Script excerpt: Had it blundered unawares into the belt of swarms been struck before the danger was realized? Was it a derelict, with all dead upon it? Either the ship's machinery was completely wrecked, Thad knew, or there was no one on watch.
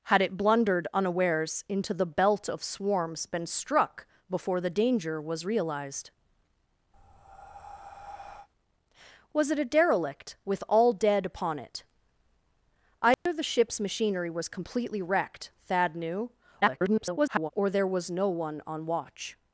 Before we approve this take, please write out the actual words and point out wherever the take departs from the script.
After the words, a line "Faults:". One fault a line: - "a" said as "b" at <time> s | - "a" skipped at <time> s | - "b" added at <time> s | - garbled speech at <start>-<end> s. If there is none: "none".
Had it blundered unawares into the belt of swarms been struck before the danger was realized? Was it a derelict, with all dead upon it? Either the ship's machinery was completely wrecked, Thad knew, [garbled] or there was no one on watch.
Faults:
- garbled speech at 16.6-17.5 s